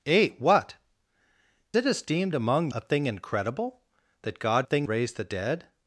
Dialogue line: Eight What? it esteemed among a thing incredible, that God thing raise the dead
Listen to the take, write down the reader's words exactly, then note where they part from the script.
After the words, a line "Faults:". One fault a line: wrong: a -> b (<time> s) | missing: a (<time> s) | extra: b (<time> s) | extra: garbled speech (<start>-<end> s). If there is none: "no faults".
Eight What? it esteemed among a thing incredible, that God thing raise the dead
Faults:
no faults